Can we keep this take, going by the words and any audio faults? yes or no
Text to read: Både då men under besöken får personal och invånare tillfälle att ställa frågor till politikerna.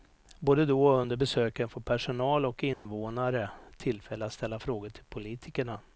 no